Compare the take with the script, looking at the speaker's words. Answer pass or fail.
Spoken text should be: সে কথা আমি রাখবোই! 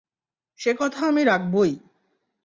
pass